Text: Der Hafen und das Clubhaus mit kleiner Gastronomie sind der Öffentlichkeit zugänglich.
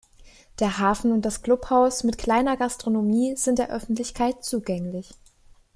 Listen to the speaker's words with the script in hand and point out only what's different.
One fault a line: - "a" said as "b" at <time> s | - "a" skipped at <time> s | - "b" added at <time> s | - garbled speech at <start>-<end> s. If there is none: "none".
none